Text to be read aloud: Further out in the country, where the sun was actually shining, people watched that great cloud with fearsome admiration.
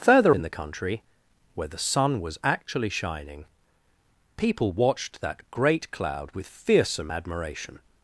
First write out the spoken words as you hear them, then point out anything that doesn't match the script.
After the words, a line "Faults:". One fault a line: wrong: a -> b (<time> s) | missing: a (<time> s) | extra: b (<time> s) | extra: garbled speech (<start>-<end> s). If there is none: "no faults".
Further in the country, where the sun was actually shining, people watched that great cloud with fearsome admiration.
Faults:
missing: out (0.3 s)